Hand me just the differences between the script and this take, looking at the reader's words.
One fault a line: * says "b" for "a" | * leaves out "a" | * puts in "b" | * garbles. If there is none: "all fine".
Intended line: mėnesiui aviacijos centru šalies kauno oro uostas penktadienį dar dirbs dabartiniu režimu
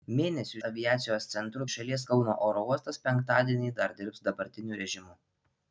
all fine